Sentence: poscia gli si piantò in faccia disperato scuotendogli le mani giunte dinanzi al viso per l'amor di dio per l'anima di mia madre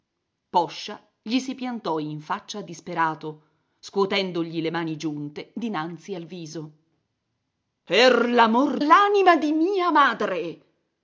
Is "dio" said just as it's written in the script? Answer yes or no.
no